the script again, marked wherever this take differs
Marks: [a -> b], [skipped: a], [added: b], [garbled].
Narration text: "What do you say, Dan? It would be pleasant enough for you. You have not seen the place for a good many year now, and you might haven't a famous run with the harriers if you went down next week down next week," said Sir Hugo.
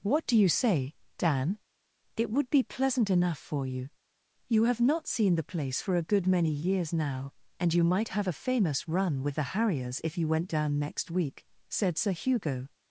"What do you say, Dan? It would be pleasant enough for you. You have not seen the place for a good many [year -> years] now, and you might [haven't -> have] a famous run with the harriers if you went down next week [skipped: down next week,"] said Sir Hugo.